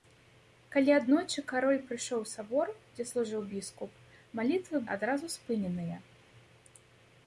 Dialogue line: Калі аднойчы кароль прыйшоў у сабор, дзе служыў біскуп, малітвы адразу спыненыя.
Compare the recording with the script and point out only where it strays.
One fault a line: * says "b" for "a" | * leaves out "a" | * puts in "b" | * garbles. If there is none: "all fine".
all fine